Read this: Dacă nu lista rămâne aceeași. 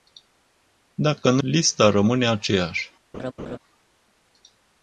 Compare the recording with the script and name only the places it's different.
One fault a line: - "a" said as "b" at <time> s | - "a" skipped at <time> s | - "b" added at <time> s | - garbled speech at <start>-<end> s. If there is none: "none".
none